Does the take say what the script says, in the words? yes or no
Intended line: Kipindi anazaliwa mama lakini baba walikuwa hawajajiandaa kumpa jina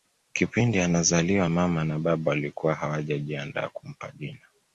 no